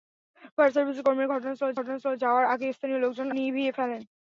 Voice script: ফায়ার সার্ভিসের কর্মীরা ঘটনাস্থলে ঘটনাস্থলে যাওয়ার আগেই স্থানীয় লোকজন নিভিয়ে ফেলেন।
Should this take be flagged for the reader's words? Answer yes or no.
no